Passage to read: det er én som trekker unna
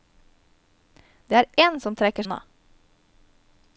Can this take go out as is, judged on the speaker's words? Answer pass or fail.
pass